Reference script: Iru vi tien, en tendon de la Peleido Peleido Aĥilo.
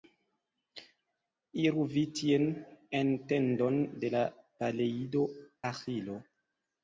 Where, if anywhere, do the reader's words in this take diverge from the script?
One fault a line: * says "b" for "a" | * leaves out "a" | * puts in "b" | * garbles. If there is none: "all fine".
* leaves out "Peleido"